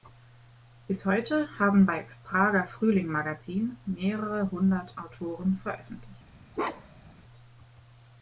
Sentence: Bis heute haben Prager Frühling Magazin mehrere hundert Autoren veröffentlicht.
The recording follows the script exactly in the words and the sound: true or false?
false